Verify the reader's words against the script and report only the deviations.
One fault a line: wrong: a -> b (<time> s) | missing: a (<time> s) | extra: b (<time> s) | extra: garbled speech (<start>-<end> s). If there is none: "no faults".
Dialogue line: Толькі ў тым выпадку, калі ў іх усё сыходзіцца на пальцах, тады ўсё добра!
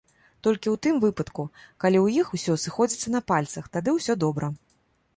no faults